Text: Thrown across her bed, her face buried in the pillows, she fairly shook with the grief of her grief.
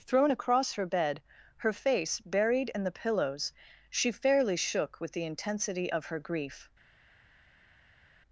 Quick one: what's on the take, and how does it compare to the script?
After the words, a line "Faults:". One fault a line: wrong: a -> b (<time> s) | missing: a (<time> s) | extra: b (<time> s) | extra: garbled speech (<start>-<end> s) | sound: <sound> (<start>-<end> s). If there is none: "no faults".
Thrown across her bed, her face buried in the pillows, she fairly shook with the intensity of her grief.
Faults:
wrong: grief -> intensity (5.3 s)